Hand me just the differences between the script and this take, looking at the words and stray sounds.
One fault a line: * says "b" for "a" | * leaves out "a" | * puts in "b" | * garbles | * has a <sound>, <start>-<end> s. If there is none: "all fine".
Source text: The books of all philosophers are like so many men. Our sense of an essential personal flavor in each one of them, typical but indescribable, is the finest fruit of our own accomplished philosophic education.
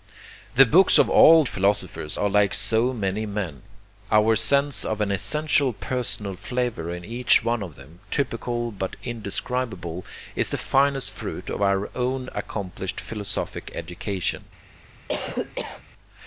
* has a cough, 15.1-15.8 s